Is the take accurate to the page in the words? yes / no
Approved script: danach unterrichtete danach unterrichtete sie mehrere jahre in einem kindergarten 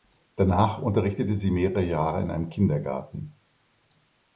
no